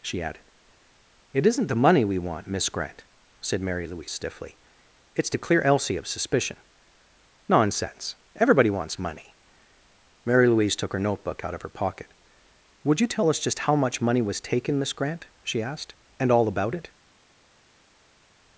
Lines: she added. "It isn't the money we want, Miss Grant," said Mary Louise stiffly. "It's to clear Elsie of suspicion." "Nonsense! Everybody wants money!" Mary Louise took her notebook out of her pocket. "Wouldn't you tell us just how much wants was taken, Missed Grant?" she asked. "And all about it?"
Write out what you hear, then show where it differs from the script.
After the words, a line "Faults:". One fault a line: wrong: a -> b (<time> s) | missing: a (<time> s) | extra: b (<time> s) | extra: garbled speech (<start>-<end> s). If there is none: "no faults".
she added. "It isn't the money we want, Miss Grant," said Mary Louise stiffly. "It's to clear Elsie of suspicion." "Nonsense! Everybody wants money!" Mary Louise took her notebook out of her pocket. "Would you tell us just how much money was taken, Miss Grant?" she asked. "And all about it?"
Faults:
wrong: Wouldn't -> Would (12.8 s)
wrong: wants -> money (14.0 s)
wrong: Missed -> Miss (14.8 s)